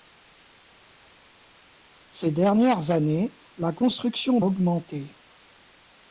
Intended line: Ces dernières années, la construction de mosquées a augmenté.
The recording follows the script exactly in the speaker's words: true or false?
false